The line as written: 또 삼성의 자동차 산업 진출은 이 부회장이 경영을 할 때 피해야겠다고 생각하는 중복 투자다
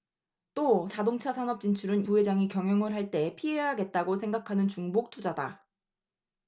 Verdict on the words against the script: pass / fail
fail